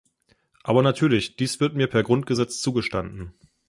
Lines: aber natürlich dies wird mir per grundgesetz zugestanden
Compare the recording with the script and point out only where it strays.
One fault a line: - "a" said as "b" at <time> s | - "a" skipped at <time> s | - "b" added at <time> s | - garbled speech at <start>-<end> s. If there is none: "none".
none